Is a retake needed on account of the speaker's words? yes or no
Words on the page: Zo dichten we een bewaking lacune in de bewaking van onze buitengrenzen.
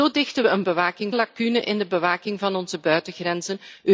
no